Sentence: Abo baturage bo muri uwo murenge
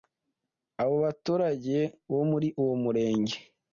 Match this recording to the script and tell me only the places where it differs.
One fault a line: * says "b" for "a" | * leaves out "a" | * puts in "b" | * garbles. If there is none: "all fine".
all fine